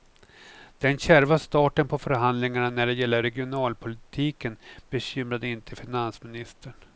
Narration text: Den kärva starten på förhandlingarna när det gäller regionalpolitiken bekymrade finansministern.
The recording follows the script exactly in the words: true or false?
false